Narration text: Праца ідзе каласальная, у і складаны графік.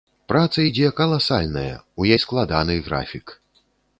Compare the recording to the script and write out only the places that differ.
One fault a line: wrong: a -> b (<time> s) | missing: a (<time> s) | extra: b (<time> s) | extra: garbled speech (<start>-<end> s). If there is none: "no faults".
no faults